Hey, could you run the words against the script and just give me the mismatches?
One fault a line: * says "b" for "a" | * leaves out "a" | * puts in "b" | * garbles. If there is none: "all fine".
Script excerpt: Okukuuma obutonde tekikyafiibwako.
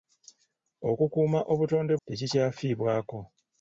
all fine